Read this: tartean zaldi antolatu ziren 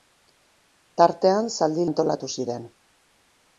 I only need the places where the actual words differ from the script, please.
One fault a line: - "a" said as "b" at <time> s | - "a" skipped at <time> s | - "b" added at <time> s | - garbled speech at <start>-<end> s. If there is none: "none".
none